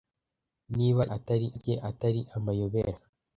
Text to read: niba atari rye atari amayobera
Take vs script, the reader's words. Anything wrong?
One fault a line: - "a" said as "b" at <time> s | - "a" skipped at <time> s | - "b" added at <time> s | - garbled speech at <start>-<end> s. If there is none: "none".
none